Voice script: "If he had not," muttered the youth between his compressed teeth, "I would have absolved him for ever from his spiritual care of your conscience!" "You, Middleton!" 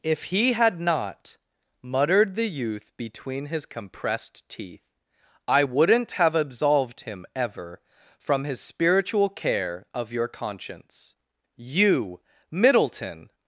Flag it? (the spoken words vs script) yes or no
yes